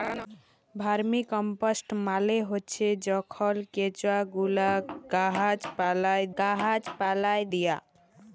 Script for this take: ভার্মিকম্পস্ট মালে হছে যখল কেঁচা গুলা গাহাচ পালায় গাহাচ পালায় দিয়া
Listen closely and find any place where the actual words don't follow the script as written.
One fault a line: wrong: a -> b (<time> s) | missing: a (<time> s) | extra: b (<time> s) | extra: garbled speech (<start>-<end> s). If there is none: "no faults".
no faults